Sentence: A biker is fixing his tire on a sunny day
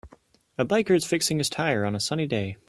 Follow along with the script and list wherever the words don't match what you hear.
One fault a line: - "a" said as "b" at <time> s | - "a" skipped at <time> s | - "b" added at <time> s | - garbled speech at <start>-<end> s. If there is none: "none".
none